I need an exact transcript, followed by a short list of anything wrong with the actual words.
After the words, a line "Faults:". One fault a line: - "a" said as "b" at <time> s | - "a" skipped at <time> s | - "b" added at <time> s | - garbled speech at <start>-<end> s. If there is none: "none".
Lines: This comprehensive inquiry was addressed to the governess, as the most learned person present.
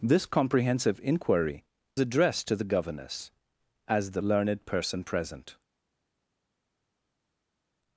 This comprehensive inquiry addressed to the governess, as the learned person present.
Faults:
- "was" skipped at 1.6 s
- "most" skipped at 4.2 s